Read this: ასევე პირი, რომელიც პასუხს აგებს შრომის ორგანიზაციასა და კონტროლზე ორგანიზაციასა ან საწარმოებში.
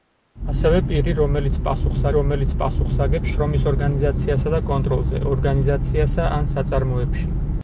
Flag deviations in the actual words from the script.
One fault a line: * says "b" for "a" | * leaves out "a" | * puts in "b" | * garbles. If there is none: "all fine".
* puts in "რომელიც პასუხს"